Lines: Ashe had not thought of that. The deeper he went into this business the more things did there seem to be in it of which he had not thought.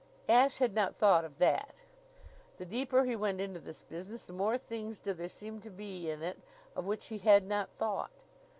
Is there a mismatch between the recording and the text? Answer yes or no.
no